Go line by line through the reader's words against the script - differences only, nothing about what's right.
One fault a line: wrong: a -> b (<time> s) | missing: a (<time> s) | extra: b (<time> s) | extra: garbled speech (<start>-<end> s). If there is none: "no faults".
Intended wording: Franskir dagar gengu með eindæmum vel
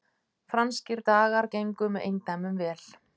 no faults